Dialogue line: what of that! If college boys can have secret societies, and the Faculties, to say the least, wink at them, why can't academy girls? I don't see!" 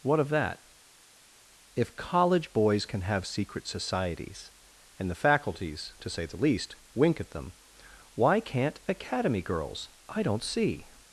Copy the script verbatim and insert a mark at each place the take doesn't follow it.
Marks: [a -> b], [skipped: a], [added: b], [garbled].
what of that! If college boys can have secret societies, and the Faculties, to say the least, wink at them, why can't academy girls? I don't see!"